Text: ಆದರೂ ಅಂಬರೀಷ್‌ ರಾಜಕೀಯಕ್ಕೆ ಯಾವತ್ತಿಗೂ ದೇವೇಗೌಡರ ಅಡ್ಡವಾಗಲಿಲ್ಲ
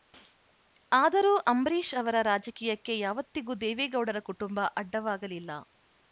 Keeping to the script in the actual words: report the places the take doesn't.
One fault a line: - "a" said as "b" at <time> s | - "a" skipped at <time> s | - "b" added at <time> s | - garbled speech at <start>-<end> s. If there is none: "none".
- "ಅವರ" added at 1.9 s
- "ಕುಟುಂಬ" added at 4.3 s